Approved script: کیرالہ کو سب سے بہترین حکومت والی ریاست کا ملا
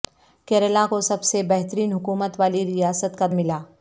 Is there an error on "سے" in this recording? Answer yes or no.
no